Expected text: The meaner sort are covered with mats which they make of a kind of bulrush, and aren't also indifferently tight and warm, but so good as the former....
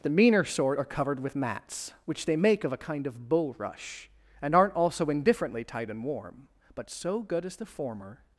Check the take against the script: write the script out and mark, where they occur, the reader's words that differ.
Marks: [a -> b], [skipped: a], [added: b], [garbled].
The meaner sort are covered with mats which they make of a kind of bulrush, and aren't also indifferently tight and warm, but so good as the former....